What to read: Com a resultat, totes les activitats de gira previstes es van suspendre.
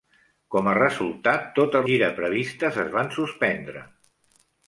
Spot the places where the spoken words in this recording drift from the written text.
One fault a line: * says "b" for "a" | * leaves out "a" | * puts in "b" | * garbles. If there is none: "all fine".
* leaves out "les activitats de"